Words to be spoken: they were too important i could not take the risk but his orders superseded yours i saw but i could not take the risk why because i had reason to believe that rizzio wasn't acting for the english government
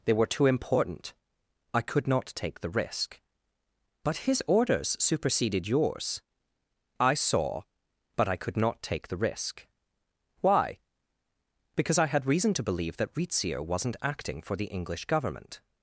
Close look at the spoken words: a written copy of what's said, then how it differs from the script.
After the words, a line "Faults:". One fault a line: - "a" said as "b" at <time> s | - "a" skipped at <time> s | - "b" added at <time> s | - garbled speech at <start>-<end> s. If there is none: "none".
they were too important i could not take the risk but his orders superseded yours i saw but i could not take the risk why because i had reason to believe that rizzio wasn't acting for the english government
Faults:
none